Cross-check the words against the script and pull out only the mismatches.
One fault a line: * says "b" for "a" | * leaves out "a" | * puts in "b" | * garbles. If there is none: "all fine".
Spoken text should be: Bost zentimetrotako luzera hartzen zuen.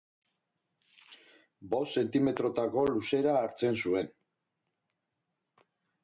all fine